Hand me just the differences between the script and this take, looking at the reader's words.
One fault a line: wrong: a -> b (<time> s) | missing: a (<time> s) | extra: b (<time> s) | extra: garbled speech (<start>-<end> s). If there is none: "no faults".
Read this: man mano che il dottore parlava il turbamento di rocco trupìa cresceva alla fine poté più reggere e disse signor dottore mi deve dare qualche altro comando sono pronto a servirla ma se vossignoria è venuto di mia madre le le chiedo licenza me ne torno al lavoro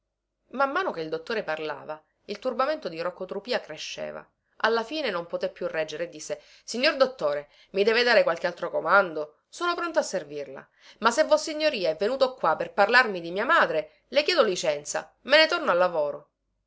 extra: non (5.1 s)
extra: qua per parlarmi (12.4 s)
missing: le (14.2 s)